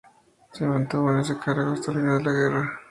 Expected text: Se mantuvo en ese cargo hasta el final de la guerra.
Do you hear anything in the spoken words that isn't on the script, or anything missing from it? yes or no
no